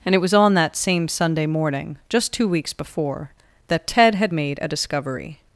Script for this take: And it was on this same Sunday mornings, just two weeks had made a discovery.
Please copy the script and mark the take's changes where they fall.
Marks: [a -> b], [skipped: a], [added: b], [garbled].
And it was on [this -> that] same Sunday [mornings, -> morning] just two weeks [added: before that Ted] had made a discovery.